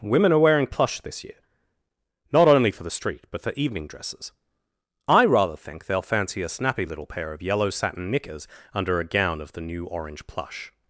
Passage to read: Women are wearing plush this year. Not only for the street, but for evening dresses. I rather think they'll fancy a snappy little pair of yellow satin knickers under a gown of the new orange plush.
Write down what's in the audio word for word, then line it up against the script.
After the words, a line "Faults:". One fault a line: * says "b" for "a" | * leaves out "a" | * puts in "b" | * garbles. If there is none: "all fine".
Women are wearing plush this year. Not only for the street, but for evening dresses. I rather think they'll fancy a snappy little pair of yellow satin knickers under a gown of the new orange plush.
Faults:
all fine